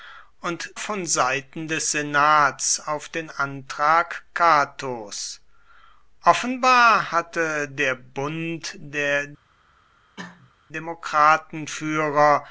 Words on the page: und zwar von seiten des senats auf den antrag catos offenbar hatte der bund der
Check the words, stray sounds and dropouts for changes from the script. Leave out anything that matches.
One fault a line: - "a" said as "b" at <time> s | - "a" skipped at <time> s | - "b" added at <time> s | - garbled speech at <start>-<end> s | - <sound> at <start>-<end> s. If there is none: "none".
- "zwar" skipped at 0.7 s
- cough at 10.2-10.5 s